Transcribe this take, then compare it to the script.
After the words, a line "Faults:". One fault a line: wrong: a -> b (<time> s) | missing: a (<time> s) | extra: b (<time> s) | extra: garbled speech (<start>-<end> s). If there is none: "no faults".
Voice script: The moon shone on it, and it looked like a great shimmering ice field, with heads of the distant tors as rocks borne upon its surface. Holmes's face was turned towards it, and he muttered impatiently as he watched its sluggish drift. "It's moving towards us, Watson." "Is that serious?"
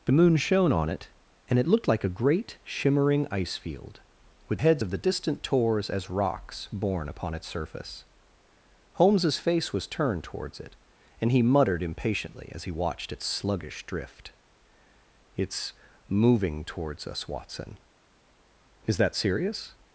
The moon shone on it, and it looked like a great shimmering ice field, with heads of the distant tors as rocks borne upon its surface. Holmes's face was turned towards it, and he muttered impatiently as he watched its sluggish drift. "It's moving towards us, Watson." "Is that serious?"
Faults:
no faults